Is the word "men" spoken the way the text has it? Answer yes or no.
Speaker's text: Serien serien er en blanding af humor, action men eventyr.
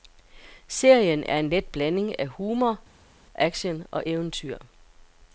no